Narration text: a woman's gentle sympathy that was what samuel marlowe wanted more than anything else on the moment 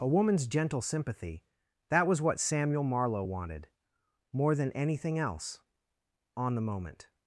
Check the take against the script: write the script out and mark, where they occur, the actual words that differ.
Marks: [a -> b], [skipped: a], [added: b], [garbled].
a woman's gentle sympathy that was what samuel marlowe wanted more than anything else on the moment